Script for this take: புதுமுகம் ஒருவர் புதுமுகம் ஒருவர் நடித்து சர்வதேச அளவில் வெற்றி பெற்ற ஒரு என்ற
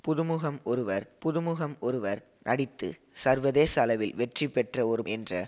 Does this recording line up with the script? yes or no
yes